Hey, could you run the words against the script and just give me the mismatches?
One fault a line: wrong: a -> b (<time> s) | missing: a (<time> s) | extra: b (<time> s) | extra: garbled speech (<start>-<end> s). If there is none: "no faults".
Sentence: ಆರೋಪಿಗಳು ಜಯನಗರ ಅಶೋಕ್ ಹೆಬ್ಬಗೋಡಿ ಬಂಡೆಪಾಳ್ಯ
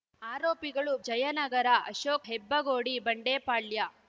no faults